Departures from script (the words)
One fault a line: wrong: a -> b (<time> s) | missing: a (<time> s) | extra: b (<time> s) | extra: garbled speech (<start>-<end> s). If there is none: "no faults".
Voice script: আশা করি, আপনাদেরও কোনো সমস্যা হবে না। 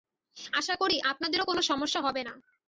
no faults